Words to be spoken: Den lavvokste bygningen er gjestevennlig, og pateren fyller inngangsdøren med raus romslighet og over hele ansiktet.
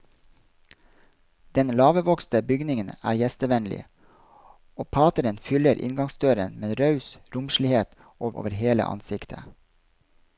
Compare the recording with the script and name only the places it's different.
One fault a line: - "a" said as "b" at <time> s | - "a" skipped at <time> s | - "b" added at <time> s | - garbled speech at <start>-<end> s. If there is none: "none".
none